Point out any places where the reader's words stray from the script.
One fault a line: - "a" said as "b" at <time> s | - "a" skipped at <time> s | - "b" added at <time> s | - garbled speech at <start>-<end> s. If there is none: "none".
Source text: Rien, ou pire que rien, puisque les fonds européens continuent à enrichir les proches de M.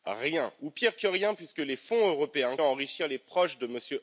- "continuent" skipped at 2.6 s